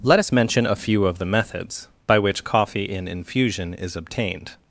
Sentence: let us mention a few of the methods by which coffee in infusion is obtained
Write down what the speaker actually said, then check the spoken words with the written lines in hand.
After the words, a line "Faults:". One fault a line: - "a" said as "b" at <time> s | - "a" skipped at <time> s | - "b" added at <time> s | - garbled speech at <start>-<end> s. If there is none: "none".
let us mention a few of the methods by which coffee in infusion is obtained
Faults:
none